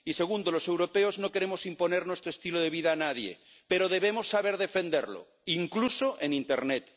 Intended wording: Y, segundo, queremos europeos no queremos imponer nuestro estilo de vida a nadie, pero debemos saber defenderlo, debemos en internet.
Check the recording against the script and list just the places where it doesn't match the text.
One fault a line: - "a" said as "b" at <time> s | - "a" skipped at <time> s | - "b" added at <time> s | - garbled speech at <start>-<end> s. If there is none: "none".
- "queremos" said as "los" at 0.5 s
- "debemos" said as "incluso" at 5.5 s